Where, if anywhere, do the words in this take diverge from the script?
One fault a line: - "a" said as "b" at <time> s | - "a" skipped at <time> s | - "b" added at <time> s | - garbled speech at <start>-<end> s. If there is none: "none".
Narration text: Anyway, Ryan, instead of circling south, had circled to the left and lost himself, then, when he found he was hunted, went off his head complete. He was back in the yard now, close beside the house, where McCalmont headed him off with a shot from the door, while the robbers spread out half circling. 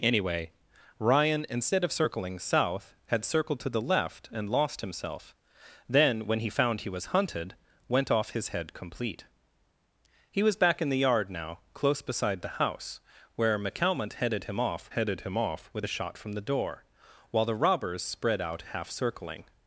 - "headed him off" added at 14.9 s